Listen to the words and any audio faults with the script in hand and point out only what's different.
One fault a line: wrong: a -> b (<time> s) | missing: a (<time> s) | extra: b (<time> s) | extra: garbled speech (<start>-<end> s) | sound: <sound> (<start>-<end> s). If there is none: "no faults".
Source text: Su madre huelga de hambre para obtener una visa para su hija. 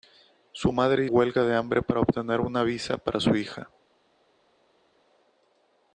no faults